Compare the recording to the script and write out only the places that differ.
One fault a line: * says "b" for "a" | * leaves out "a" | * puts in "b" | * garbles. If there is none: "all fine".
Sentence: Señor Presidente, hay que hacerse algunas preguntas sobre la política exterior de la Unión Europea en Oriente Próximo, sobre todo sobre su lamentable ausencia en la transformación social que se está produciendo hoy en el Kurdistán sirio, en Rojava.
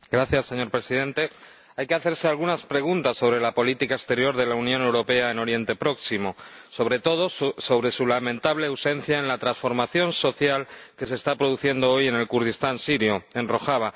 all fine